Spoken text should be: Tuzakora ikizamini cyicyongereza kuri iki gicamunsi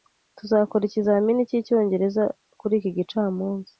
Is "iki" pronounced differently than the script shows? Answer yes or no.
no